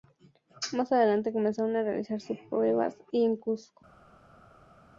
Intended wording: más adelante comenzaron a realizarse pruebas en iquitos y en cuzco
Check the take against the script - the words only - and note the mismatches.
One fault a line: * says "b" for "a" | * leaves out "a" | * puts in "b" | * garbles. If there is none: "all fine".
* leaves out "en iquitos"